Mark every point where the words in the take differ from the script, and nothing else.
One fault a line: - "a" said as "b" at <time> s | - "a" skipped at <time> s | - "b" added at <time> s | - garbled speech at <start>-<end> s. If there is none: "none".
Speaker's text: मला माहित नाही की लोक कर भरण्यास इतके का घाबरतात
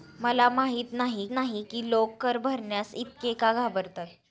- "नाही" added at 1.3 s